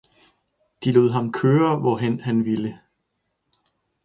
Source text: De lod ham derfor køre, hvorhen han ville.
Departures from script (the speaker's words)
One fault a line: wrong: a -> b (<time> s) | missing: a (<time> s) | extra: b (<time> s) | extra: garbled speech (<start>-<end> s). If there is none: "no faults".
missing: derfor (1.3 s)